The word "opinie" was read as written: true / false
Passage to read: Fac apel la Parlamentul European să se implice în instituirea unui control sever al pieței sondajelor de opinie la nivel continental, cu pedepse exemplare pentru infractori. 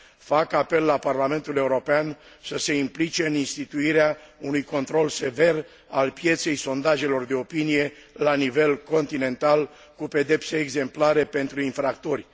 true